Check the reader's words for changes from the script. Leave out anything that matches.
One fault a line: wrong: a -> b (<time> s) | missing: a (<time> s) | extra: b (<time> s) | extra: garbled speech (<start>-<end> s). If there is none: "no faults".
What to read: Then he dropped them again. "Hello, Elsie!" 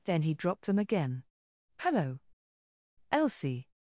no faults